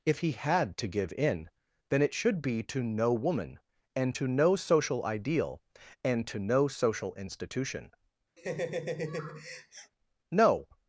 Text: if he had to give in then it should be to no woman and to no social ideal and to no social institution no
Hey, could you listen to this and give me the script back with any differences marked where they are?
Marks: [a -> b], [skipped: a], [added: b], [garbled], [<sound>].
if he had to give in then it should be to no woman and to no social ideal and to no social institution [laugh] no